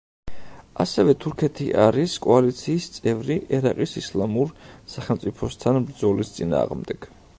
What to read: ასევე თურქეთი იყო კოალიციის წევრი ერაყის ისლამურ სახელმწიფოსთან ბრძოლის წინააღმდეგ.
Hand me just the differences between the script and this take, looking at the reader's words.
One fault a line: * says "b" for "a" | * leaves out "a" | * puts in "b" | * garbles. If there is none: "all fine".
* says "არის" for "იყო"